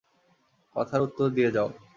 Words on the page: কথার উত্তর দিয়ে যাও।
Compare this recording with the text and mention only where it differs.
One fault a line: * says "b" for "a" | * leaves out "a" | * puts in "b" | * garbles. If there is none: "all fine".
all fine